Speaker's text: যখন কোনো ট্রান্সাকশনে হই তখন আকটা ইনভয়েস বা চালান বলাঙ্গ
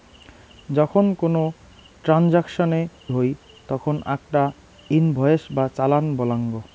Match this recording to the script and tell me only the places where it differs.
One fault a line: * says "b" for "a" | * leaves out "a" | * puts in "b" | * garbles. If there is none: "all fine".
all fine